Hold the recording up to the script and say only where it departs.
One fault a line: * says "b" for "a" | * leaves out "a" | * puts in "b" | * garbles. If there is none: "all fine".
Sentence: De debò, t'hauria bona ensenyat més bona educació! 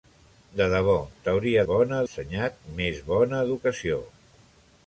all fine